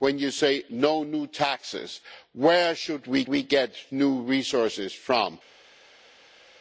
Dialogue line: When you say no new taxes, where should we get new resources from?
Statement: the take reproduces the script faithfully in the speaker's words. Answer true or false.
false